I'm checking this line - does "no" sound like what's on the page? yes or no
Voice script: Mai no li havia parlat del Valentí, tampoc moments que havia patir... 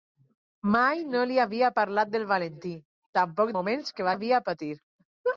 yes